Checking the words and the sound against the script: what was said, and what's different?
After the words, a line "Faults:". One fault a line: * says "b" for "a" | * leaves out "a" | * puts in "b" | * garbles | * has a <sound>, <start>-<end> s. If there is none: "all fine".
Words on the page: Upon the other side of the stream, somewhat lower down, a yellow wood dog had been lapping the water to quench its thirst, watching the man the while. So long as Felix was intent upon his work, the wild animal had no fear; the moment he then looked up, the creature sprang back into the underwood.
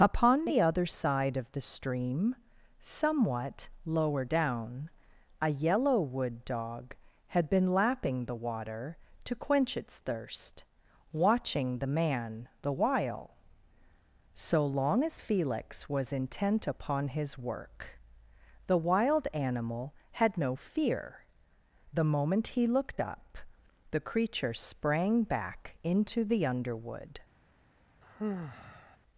Upon the other side of the stream, somewhat lower down, a yellow wood dog had been lapping the water to quench its thirst, watching the man the while. So long as Felix was intent upon his work, the wild animal had no fear; the moment he looked up, the creature sprang back into the underwood.
Faults:
* leaves out "then"
* has a sigh, 28.0-29.0 s